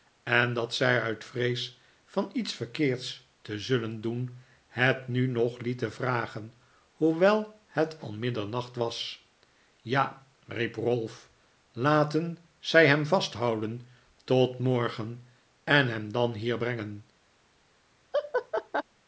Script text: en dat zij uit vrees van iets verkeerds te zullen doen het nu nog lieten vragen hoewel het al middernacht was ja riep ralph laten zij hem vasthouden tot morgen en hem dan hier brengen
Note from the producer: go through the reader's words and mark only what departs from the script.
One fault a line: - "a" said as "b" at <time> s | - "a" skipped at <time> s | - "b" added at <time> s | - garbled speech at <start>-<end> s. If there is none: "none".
none